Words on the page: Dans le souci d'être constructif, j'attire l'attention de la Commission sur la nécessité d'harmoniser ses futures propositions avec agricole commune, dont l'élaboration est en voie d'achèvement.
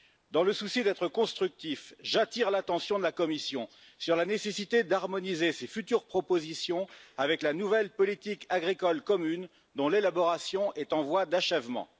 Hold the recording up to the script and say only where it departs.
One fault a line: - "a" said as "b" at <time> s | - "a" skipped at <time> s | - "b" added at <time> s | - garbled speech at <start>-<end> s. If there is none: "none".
- "la nouvelle politique" added at 7.4 s